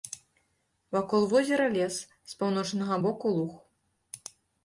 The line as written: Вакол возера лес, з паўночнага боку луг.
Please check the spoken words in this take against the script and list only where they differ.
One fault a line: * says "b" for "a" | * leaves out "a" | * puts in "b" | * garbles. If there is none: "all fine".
all fine